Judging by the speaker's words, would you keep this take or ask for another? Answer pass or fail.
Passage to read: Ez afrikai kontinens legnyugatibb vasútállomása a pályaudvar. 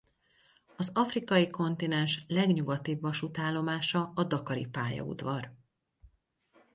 fail